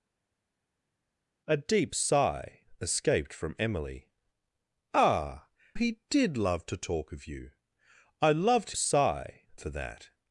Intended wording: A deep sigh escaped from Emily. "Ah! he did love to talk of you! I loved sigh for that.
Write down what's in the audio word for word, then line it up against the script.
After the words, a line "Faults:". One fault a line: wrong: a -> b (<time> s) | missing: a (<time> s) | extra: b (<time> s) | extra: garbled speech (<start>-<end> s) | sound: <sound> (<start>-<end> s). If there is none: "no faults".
A deep sigh escaped from Emily. "Ah! he did love to talk of you! I loved sigh for that.
Faults:
no faults